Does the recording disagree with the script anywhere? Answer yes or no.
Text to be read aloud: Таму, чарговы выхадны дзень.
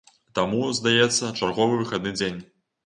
yes